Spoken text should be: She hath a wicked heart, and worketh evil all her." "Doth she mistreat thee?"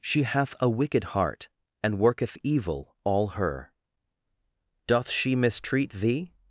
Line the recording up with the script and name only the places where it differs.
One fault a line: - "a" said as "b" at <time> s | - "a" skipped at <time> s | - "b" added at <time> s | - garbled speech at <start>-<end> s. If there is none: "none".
none